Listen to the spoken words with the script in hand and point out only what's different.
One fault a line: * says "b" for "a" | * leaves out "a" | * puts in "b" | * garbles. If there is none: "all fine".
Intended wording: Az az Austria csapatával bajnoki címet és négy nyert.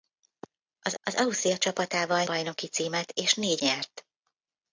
all fine